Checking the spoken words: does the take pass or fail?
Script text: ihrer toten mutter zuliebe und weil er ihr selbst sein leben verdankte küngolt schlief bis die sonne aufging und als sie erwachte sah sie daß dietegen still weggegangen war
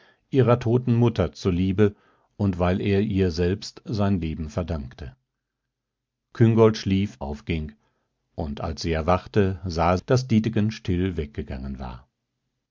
fail